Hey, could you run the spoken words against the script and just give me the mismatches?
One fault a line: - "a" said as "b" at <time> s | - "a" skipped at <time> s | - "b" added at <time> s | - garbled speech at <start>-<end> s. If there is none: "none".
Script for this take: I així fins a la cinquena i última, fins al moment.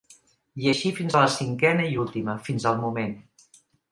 none